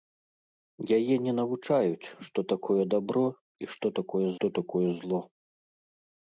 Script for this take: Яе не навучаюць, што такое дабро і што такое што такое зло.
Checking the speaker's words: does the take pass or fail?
pass